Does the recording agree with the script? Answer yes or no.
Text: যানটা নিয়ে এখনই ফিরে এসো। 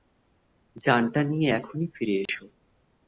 yes